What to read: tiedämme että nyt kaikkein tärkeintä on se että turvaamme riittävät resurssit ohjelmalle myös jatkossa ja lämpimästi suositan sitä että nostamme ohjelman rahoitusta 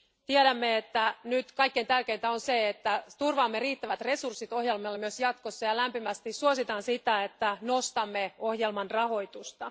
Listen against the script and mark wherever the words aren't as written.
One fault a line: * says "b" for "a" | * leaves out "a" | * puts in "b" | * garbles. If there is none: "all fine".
all fine